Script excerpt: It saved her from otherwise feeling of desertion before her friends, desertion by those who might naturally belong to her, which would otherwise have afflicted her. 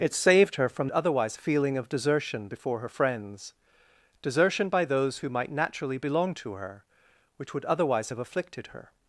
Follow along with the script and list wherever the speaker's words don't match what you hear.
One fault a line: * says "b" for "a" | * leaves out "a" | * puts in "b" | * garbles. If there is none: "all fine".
all fine